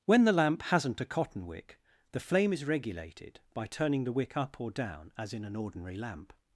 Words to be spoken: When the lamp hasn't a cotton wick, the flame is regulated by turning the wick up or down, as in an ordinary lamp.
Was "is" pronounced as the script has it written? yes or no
yes